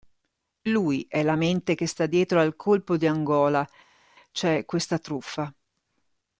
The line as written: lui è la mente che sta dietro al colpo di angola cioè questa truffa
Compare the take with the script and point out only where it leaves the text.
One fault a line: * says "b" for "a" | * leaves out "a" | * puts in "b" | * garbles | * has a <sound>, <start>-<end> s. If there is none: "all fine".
all fine